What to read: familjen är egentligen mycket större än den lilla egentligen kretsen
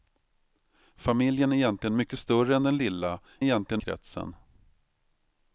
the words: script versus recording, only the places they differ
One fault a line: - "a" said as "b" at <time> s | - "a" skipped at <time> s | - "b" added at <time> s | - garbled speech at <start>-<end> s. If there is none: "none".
none